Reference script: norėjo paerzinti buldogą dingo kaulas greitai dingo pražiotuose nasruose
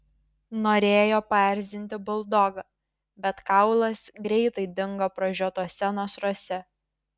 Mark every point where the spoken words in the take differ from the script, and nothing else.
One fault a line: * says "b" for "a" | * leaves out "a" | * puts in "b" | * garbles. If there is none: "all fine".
* says "bet" for "dingo"